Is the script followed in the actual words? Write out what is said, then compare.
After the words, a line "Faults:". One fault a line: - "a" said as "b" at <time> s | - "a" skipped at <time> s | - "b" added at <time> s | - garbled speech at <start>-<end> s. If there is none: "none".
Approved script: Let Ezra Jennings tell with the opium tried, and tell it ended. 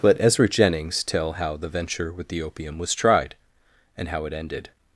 Let Ezra Jennings tell how the venture with the opium was tried, and how it ended.
Faults:
- "how the venture" added at 1.3 s
- "was" added at 2.8 s
- "tell" said as "how" at 4.1 s